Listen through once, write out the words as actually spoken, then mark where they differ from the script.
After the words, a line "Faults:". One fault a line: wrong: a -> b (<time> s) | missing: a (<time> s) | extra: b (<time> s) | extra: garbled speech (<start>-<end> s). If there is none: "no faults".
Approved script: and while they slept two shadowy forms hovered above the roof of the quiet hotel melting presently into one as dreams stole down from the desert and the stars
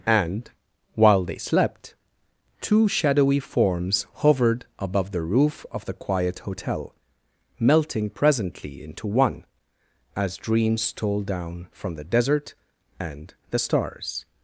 and while they slept two shadowy forms hovered above the roof of the quiet hotel melting presently into one as dreams stole down from the desert and the stars
Faults:
no faults